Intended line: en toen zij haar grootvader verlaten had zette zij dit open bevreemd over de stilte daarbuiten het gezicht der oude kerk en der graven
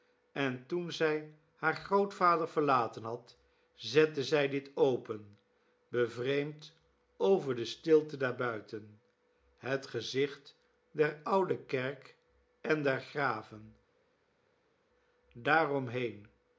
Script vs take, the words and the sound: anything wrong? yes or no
no